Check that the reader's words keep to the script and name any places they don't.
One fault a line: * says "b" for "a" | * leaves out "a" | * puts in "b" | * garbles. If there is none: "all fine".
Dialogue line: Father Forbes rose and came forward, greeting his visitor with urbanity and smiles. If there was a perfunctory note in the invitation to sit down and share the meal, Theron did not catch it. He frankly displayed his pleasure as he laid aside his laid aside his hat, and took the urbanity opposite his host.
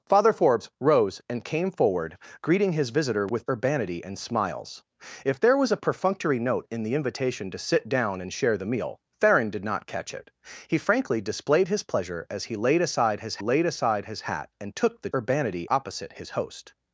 all fine